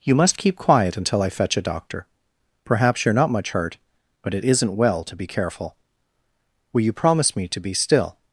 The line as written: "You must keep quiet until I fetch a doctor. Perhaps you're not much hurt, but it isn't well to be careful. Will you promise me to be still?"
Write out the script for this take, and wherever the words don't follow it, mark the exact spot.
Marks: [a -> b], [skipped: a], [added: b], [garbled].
"You must keep quiet until I fetch a doctor. Perhaps you're not much hurt, but it isn't well to be careful. Will you promise me to be still?"